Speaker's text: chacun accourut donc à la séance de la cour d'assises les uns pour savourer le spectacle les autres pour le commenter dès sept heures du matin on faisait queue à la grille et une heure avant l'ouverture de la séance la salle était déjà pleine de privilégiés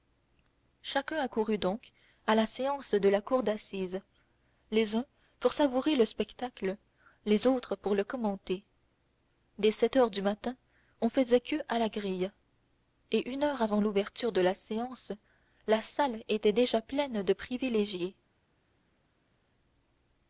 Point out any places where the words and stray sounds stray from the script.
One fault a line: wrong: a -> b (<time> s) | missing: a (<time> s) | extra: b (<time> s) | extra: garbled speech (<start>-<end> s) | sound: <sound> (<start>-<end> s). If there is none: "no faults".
no faults